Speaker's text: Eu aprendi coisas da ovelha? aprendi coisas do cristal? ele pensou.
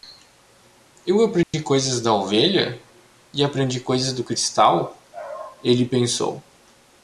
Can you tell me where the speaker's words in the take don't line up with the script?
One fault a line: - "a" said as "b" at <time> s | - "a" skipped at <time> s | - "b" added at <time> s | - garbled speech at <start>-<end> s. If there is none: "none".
- "e" added at 3.3 s